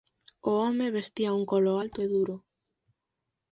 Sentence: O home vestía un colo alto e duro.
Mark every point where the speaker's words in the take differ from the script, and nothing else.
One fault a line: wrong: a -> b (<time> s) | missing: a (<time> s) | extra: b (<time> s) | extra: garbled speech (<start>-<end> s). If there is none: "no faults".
no faults